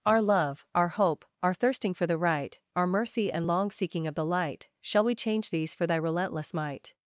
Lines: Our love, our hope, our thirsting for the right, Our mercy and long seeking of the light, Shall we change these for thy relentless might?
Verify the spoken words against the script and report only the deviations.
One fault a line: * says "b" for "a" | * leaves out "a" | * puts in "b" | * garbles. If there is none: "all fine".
all fine